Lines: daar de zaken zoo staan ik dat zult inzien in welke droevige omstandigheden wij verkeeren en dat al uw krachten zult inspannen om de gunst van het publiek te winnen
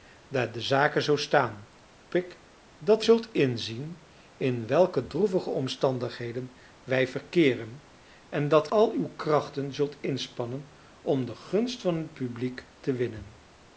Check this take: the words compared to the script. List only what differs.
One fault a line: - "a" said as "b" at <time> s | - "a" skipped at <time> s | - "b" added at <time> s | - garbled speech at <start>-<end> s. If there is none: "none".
none